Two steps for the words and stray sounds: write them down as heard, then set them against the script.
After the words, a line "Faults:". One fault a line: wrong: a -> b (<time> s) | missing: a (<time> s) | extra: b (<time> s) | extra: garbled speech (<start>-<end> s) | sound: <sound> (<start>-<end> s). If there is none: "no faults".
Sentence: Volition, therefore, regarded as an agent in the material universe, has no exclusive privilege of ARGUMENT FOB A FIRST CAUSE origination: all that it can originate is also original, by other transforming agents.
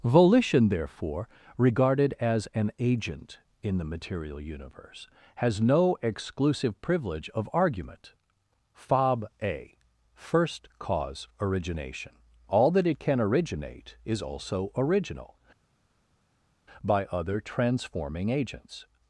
Volition, therefore, regarded as an agent in the material universe, has no exclusive privilege of ARGUMENT FOB A FIRST CAUSE origination: all that it can originate is also original, by other transforming agents.
Faults:
no faults